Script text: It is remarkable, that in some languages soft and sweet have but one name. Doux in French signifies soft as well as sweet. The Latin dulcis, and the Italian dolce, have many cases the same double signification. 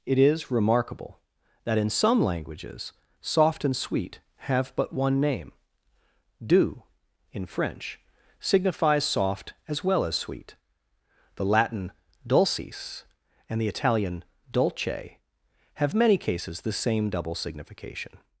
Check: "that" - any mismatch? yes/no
no